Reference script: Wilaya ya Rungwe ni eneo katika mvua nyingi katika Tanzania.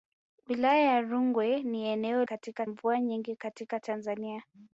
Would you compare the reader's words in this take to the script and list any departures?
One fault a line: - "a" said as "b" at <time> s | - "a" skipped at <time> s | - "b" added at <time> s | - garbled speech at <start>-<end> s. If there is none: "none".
none